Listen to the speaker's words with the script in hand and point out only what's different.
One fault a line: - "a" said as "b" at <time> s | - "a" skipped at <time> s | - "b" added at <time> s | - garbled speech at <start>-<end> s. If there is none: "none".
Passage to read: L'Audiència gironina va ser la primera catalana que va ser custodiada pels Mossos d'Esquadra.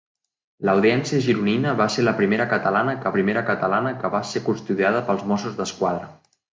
- "primera catalana que" added at 3.2 s